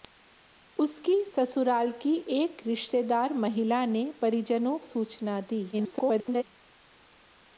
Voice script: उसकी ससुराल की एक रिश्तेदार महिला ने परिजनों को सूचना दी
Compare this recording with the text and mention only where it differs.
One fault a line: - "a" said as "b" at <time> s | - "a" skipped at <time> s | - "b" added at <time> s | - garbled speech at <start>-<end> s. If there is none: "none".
- "को" skipped at 4.8 s
- garbled speech at 5.7-6.4 s